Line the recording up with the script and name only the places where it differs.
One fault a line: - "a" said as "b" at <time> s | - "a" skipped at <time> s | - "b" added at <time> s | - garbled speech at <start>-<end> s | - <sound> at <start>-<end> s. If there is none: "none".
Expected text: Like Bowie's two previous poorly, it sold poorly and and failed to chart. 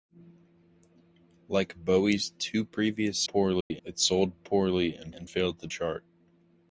- dropout at 3.6-3.7 s